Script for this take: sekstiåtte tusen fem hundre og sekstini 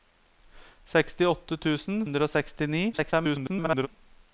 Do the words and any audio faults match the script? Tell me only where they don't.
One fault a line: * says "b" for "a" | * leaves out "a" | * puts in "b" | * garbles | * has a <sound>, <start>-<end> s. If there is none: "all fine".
* leaves out "fem"
* garbles